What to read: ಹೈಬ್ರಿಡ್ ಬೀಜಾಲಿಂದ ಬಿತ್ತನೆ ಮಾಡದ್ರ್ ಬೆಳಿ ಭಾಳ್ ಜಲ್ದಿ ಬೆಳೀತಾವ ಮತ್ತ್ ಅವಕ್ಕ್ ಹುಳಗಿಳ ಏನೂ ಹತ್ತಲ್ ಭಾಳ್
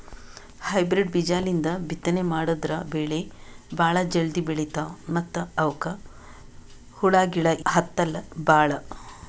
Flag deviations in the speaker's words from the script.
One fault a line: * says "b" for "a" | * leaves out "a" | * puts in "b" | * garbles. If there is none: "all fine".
* leaves out "ಏನೂ"